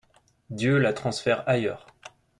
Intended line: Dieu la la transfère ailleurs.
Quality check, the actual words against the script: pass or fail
fail